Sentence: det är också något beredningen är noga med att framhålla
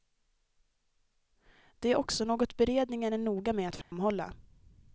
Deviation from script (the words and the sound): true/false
true